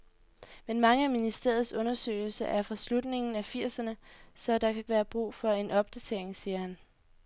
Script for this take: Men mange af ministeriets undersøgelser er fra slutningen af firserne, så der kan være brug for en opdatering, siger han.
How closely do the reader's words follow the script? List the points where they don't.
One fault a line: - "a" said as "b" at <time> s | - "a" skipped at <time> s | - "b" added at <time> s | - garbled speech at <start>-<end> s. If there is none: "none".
none